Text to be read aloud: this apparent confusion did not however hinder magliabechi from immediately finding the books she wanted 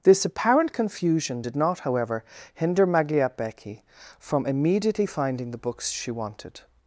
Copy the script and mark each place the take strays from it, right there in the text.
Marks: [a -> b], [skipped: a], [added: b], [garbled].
this apparent confusion did not however hinder magliabechi from immediately finding the books she wanted